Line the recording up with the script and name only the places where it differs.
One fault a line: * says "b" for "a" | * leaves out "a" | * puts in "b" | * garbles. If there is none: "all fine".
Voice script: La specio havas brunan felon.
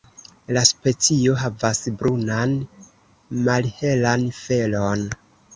* puts in "malhelan"